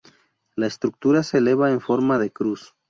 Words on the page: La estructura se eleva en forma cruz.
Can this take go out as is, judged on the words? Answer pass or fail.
fail